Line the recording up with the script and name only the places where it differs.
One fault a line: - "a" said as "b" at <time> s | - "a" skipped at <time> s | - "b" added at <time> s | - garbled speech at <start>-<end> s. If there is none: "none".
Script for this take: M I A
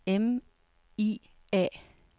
none